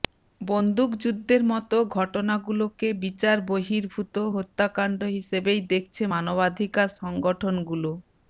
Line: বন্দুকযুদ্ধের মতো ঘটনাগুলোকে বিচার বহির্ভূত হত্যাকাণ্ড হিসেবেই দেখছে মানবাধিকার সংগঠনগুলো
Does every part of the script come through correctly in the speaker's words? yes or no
yes